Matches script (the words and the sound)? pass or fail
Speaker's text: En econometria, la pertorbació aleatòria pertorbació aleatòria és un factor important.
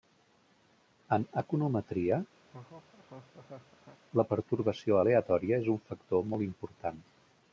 fail